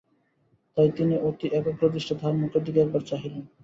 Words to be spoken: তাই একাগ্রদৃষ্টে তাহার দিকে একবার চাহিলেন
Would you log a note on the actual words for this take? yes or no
yes